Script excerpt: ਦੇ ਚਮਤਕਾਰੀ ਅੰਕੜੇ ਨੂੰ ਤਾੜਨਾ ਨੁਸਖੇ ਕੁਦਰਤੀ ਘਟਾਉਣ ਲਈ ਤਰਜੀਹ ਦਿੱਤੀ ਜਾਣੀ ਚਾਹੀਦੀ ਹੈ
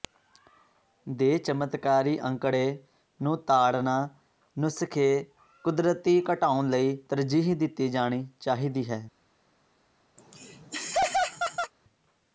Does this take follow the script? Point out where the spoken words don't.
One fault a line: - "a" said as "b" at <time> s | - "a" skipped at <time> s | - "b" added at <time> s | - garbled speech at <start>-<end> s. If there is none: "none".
none